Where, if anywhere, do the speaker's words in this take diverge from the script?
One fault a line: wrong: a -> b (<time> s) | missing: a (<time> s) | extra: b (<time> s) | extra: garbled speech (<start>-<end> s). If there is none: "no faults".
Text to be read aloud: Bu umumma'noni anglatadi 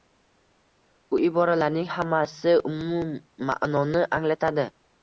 extra: iboralarning hammasi (1.3 s)